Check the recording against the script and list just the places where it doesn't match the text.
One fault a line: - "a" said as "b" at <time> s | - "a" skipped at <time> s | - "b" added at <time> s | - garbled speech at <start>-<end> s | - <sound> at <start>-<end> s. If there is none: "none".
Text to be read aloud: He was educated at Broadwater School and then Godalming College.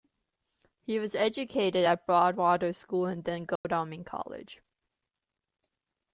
- dropout at 3.6-3.6 s